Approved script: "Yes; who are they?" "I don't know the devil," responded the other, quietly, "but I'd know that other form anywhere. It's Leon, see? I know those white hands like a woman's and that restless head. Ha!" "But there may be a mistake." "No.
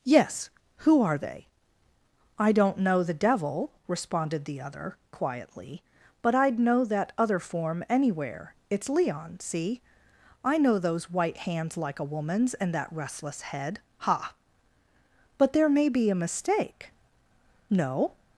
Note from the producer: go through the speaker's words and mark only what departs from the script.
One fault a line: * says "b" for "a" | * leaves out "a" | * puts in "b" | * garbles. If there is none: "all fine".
all fine